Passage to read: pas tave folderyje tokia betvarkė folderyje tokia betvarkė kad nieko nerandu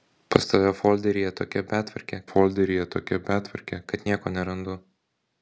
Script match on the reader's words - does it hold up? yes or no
yes